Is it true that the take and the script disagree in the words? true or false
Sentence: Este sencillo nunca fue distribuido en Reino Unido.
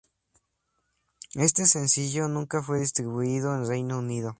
false